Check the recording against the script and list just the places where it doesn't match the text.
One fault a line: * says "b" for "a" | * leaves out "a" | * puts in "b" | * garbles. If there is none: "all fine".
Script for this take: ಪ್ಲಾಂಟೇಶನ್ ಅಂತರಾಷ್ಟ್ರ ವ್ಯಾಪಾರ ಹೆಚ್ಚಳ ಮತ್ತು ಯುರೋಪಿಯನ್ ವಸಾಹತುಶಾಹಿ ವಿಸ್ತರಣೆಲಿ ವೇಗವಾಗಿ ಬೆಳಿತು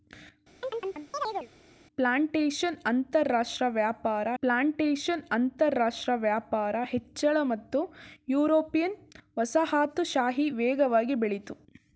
* puts in "ಪ್ಲಾಂಟೇಶನ್ ಅಂತರಾಷ್ಟ್ರ ವ್ಯಾಪಾರ"
* leaves out "ವಿಸ್ತರಣೆಲಿ"